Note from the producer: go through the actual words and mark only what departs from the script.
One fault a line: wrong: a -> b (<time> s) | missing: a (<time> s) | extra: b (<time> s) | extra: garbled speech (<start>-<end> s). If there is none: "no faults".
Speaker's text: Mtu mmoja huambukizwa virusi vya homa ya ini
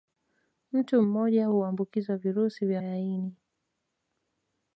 missing: homa (2.8 s)